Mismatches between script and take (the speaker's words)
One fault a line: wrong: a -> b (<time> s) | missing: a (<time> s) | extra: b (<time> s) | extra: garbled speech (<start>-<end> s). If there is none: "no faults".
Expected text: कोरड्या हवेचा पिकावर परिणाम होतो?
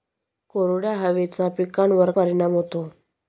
no faults